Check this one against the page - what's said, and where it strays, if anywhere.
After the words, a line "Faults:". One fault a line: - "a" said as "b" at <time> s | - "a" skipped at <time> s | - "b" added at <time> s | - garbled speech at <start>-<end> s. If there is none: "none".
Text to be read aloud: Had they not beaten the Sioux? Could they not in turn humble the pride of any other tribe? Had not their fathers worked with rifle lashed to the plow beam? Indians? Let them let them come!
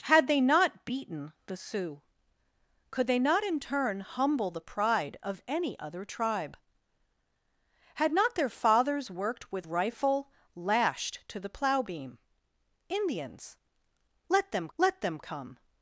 Had they not beaten the Sioux? Could they not in turn humble the pride of any other tribe? Had not their fathers worked with rifle lashed to the plow beam? Indians? Let them let them come!
Faults:
none